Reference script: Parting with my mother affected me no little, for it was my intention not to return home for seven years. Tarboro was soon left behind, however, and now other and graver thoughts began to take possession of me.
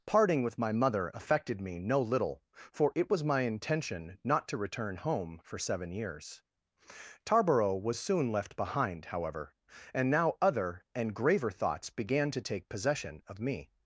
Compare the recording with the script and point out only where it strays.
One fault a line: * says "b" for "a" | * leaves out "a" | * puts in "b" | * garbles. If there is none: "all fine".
all fine